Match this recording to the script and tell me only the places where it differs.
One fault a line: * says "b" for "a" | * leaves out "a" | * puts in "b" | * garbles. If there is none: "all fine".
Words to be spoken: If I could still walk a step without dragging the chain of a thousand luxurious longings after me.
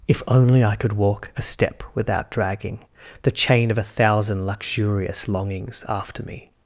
* puts in "only"
* leaves out "still"